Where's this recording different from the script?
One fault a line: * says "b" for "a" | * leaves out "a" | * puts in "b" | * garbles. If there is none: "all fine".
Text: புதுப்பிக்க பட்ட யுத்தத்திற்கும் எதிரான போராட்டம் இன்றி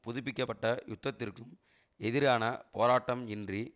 all fine